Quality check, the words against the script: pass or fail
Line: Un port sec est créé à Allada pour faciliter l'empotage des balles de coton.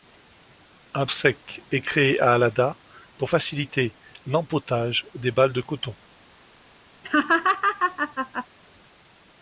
fail